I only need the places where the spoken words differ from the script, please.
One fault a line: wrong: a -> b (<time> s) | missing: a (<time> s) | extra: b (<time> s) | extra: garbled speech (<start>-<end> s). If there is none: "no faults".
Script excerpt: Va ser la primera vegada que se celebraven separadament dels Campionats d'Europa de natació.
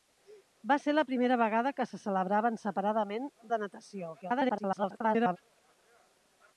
missing: dels Campionats d'Europa (3.3 s)
extra: garbled speech (4.2-5.4 s)